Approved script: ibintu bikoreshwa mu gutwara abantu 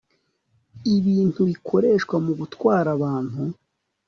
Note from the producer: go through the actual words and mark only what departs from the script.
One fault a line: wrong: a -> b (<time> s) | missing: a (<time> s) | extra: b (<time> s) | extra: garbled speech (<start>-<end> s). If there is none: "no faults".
no faults